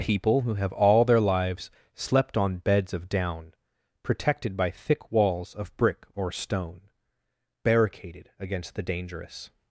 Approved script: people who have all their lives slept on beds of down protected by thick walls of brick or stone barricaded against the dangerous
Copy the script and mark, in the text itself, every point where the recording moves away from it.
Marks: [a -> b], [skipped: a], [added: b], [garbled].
people who have all their lives slept on beds of down protected by thick walls of brick or stone barricaded against the dangerous